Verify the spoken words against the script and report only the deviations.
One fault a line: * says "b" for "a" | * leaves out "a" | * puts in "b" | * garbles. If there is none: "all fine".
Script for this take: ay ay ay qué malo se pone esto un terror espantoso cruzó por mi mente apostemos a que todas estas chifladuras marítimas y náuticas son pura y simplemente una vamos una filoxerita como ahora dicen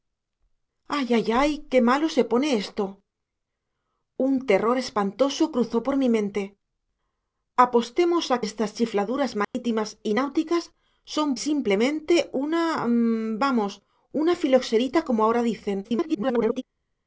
* leaves out "que todas"
* leaves out "pura"
* garbles